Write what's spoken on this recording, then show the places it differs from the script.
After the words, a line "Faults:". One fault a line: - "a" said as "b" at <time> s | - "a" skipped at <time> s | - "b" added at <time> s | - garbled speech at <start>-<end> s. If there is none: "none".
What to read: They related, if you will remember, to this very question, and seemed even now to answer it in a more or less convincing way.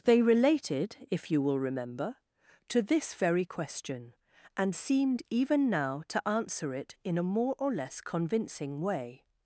They related, if you will remember, to this very question, and seemed even now to answer it in a more or less convincing way.
Faults:
none